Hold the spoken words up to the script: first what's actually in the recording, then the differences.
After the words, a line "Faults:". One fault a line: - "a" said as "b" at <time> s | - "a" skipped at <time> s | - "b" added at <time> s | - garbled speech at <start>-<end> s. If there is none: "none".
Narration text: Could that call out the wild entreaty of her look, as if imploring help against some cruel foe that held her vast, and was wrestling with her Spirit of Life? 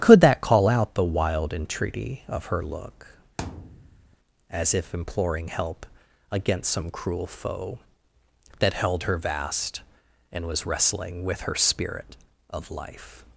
Could that call out the wild entreaty of her look, as if imploring help against some cruel foe that held her vast, and was wrestling with her Spirit of Life?
Faults:
none